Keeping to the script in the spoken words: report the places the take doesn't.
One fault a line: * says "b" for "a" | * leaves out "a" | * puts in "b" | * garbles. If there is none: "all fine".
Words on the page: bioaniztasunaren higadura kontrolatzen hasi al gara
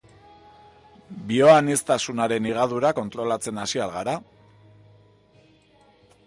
all fine